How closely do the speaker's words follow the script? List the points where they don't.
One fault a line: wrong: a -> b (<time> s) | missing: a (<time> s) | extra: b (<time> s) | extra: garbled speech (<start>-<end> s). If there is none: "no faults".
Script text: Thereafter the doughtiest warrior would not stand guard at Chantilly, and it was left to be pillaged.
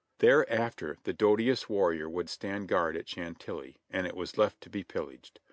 missing: not (2.3 s)